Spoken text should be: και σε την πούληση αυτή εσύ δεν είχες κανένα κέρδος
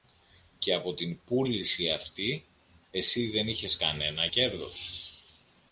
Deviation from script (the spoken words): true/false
true